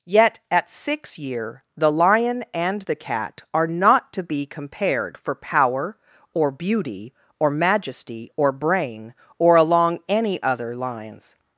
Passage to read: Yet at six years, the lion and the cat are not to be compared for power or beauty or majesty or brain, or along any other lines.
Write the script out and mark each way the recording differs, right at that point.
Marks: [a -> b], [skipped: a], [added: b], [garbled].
Yet at six [years, -> year] the lion and the cat are not to be compared for power or beauty or majesty or brain, or along any other lines.